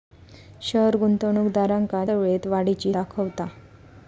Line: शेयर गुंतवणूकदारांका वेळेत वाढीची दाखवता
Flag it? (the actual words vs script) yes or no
no